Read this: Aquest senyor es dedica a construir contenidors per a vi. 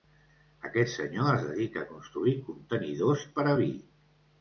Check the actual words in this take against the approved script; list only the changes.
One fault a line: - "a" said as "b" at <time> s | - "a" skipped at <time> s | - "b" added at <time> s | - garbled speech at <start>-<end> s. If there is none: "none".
none